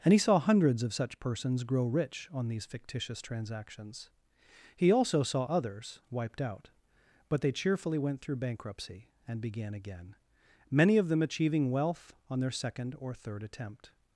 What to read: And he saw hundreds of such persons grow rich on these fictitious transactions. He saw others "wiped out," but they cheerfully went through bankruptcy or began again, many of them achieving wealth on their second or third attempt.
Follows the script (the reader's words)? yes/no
no